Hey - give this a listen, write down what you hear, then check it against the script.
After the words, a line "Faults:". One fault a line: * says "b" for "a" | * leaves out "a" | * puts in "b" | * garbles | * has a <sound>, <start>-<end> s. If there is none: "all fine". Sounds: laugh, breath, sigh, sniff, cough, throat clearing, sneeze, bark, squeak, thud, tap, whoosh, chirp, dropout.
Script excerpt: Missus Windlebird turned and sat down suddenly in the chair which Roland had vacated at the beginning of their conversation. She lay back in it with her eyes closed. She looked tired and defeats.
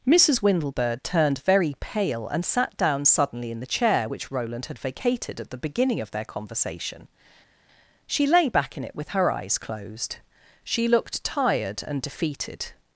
Missus Windlebird turned very pale and sat down suddenly in the chair which Roland had vacated at the beginning of their conversation. She lay back in it with her eyes closed. She looked tired and defeated.
Faults:
* puts in "very pale"
* says "defeated" for "defeats"